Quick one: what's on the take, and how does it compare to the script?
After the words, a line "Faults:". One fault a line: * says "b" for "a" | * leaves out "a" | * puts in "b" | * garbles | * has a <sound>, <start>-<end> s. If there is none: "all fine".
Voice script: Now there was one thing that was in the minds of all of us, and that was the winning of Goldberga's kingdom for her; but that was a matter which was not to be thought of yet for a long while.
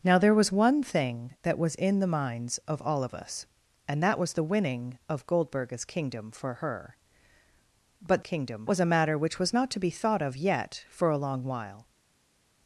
Now there was one thing that was in the minds of all of us, and that was the winning of Goldberga's kingdom for her; but kingdom was a matter which was not to be thought of yet for a long while.
Faults:
* says "kingdom" for "that"